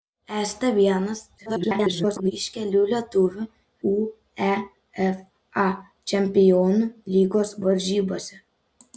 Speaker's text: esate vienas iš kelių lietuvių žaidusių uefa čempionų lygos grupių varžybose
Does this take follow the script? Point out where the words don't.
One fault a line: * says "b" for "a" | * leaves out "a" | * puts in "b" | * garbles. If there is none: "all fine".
* garbles
* leaves out "žaidusių"
* leaves out "grupių"